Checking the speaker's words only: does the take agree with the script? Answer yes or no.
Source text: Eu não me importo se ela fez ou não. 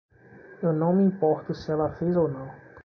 yes